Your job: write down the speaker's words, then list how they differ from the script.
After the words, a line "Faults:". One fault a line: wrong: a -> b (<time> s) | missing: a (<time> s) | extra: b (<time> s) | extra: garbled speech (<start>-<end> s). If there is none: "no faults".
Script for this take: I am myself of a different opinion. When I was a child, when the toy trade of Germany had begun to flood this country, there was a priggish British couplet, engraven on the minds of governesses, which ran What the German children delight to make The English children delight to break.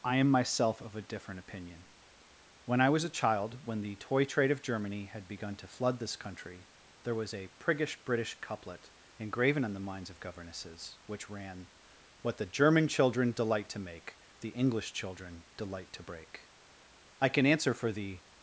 I am myself of a different opinion. When I was a child, when the toy trade of Germany had begun to flood this country, there was a priggish British couplet, engraven on the minds of governesses, which ran What the German children delight to make The English children delight to break. I can answer for the
Faults:
extra: I can answer for the (17.2 s)